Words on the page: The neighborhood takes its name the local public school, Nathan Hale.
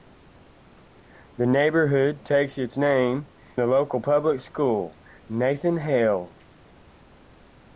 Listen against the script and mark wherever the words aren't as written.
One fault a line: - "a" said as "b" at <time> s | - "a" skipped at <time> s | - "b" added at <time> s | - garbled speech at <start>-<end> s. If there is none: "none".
none